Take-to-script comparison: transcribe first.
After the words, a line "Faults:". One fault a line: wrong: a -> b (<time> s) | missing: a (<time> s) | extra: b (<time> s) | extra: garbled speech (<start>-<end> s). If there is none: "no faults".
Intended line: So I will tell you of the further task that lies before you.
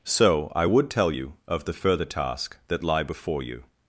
So I would tell you of the further task that lie before you.
Faults:
wrong: will -> would (0.6 s)
wrong: lies -> lie (2.8 s)